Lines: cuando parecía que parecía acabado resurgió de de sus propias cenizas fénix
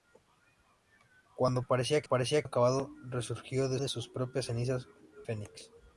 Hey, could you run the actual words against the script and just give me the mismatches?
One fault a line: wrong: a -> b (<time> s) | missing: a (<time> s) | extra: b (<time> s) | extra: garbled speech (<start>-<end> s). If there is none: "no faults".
no faults